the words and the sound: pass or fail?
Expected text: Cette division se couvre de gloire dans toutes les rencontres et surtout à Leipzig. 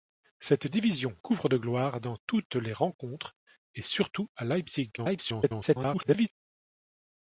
fail